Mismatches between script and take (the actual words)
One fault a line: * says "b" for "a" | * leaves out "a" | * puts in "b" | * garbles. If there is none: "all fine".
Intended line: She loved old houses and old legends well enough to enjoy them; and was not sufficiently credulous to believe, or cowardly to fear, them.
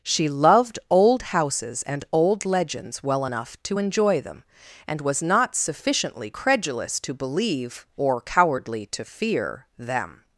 all fine